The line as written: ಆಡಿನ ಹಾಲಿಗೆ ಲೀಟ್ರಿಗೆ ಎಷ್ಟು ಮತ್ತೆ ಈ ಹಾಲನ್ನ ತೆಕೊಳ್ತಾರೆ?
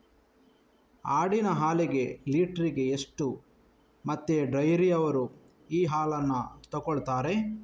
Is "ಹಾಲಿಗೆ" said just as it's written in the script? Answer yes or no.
yes